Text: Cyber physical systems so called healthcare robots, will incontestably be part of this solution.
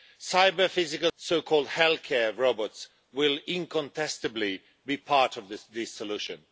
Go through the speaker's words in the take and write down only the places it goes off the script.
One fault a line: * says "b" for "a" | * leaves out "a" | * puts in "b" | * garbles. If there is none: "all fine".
* leaves out "systems"